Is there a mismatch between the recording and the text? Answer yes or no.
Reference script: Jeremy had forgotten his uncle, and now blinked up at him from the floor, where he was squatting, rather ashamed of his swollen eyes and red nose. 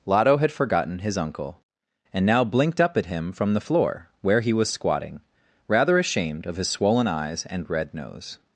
yes